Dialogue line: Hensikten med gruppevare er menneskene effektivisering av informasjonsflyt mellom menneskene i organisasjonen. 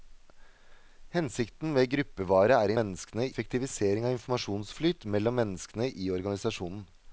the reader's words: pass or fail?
pass